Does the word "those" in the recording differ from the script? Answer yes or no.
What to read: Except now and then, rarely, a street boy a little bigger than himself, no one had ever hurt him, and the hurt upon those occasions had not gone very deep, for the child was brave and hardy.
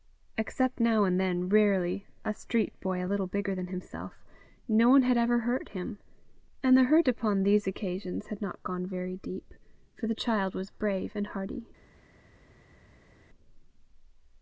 yes